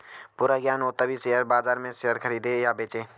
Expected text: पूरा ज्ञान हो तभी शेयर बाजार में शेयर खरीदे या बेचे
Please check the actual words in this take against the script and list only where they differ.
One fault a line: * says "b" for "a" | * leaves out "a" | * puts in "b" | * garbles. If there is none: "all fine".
all fine